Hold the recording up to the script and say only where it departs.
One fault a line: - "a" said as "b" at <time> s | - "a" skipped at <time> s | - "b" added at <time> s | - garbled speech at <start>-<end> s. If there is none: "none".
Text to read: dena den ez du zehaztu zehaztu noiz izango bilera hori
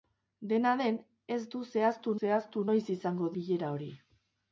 none